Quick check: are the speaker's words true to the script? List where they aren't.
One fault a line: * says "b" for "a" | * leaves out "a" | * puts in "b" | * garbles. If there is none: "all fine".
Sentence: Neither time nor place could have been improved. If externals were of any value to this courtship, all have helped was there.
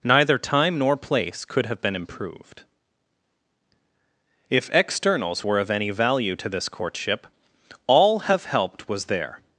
all fine